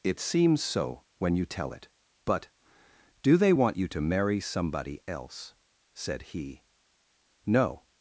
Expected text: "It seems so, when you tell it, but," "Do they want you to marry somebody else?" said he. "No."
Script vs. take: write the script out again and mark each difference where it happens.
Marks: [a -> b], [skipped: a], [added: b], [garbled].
"It seems so, when you tell it, but," "Do they want you to marry somebody else?" said he. "No."